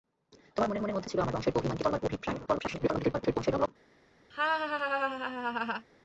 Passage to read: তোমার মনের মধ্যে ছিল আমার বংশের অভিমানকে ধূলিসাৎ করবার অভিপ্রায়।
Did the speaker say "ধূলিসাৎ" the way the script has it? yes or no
no